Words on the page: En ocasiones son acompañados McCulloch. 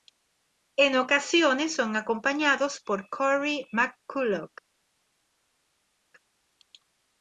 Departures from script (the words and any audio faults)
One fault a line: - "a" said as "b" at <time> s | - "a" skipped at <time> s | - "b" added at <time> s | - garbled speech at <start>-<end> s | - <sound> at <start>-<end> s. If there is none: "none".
- "por Cory" added at 2.8 s